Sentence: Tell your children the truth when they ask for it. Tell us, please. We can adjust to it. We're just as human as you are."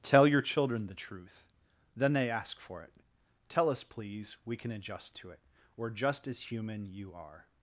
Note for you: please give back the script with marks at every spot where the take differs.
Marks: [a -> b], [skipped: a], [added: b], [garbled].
Tell your children the truth [when -> then] they ask for it. Tell us, please. We can adjust to it. We're just as human [skipped: as] you are."